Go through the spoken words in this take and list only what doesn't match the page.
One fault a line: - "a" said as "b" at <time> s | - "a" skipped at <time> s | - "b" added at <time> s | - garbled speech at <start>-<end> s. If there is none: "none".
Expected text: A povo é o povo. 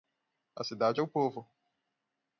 - "povo" said as "cidade" at 0.6 s